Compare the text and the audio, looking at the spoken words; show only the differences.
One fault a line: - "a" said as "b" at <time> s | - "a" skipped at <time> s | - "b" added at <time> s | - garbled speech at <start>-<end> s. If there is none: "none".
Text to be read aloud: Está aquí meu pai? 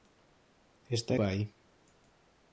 - "aquí meu" skipped at 1.1 s